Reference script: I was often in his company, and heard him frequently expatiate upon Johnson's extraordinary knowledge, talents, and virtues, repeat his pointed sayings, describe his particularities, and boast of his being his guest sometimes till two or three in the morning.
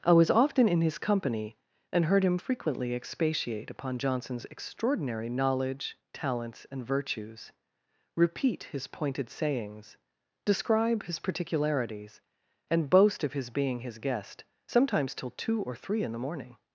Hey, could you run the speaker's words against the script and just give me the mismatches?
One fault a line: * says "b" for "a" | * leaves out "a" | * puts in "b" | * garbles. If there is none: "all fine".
all fine